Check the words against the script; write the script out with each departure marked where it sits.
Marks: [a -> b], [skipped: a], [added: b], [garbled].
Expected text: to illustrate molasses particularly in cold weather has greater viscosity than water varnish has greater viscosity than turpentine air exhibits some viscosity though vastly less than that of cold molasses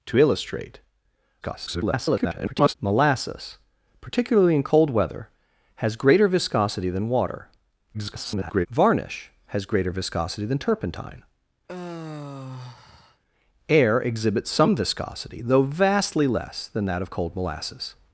to illustrate [garbled] molasses particularly in cold weather has greater viscosity than water [garbled] varnish has greater viscosity than turpentine air exhibits some viscosity though vastly less than that of cold molasses